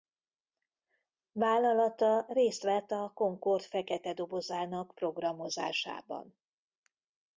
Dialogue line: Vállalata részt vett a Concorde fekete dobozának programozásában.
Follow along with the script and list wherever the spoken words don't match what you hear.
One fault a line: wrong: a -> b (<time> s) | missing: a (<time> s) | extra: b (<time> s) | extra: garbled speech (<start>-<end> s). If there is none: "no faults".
no faults